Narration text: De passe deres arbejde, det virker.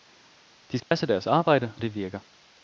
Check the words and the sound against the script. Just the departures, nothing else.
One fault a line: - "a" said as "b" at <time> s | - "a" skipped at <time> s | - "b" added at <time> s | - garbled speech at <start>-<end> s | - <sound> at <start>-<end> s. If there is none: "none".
- dropout at 0.8-0.9 s